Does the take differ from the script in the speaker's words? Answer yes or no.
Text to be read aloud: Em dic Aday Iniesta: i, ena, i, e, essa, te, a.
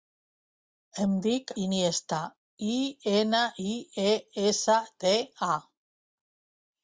yes